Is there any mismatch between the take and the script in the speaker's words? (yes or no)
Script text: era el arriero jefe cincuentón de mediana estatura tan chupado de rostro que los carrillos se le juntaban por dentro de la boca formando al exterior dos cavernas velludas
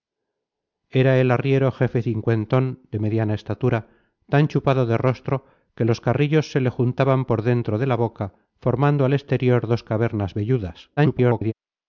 yes